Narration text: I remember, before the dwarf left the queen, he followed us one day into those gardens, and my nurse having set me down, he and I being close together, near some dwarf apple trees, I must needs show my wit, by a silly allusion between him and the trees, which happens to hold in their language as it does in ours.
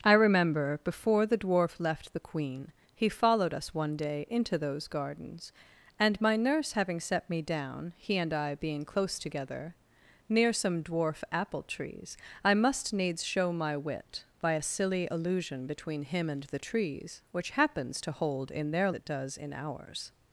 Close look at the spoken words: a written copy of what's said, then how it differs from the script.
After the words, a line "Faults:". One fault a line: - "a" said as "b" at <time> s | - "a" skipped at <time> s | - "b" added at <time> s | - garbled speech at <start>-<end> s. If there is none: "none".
I remember, before the dwarf left the queen, he followed us one day into those gardens, and my nurse having set me down, he and I being close together, near some dwarf apple trees, I must needs show my wit, by a silly allusion between him and the trees, which happens to hold in their it does in ours.
Faults:
- "language as" skipped at 18.9 s